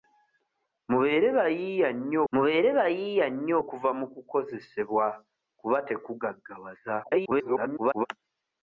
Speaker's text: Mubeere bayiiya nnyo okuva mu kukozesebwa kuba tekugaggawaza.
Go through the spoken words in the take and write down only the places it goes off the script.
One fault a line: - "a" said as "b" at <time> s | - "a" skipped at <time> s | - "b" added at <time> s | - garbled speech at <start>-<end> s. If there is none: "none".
- "mubeere bayiiya nnyo" added at 2.3 s
- garbled speech at 7.0-8.1 s